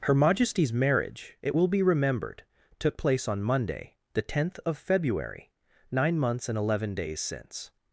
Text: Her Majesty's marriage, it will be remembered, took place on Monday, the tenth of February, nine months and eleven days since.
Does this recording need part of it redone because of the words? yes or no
no